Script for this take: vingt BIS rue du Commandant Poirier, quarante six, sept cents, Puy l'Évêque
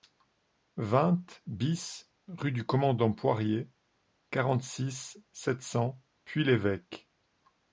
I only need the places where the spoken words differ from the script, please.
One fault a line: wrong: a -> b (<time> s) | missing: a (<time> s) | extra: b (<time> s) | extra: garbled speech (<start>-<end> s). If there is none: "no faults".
no faults